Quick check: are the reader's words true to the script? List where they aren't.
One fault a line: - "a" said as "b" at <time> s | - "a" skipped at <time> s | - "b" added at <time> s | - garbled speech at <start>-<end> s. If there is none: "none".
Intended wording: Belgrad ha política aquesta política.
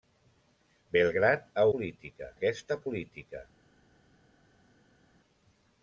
none